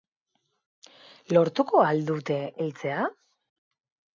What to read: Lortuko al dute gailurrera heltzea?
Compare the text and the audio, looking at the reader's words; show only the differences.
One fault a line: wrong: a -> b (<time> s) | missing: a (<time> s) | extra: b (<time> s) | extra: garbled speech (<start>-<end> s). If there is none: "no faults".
missing: gailurrera (2.4 s)